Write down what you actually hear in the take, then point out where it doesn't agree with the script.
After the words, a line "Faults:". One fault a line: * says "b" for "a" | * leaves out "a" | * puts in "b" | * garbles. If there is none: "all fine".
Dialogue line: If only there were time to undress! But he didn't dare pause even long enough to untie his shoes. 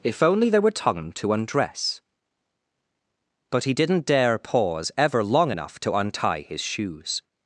If only there were time to undress! But he didn't dare pause ever long enough to untie his shoes.
Faults:
* says "ever" for "even"